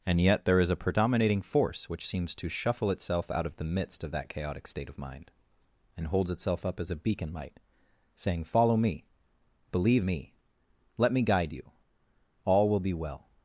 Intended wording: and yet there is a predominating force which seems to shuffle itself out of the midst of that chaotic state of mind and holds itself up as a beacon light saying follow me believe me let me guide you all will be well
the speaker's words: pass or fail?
pass